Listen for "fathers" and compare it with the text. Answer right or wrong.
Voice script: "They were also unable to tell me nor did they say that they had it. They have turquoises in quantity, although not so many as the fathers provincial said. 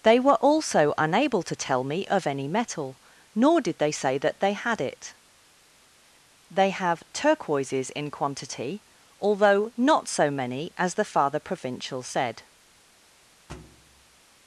wrong